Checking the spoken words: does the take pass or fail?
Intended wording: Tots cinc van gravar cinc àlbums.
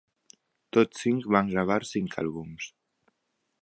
pass